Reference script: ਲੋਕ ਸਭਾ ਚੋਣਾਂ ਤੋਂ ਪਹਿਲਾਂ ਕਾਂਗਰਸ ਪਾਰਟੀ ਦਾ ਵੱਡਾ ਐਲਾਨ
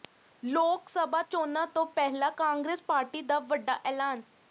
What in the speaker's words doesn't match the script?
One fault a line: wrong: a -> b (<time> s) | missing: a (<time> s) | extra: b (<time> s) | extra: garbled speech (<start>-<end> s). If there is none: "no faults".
no faults